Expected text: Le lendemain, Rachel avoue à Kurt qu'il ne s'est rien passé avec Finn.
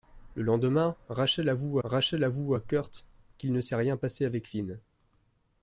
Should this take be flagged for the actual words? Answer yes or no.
yes